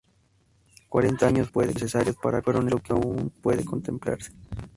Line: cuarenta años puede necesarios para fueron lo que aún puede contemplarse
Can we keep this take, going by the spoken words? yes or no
yes